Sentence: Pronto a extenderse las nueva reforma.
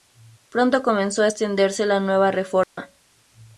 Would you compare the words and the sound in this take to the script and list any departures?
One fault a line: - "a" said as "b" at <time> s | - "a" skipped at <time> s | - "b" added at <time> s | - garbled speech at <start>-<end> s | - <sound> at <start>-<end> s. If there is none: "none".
- "comenzó" added at 0.8 s
- "las" said as "la" at 1.9 s
- dropout at 2.6-2.8 s